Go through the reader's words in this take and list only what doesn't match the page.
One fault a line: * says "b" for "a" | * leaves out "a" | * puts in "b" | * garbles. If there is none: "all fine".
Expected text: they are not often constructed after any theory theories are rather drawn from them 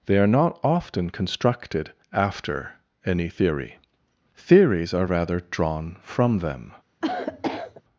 all fine